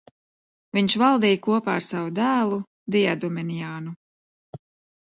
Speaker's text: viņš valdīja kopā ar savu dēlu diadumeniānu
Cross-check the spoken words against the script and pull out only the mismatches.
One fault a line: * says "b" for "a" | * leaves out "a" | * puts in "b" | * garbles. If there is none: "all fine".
all fine